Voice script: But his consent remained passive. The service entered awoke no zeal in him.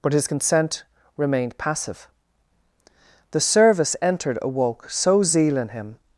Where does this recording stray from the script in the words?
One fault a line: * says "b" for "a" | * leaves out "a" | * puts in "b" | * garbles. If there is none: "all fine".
* says "so" for "no"